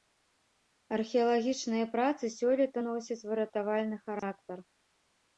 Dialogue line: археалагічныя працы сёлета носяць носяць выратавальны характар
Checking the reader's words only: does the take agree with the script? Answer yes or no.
no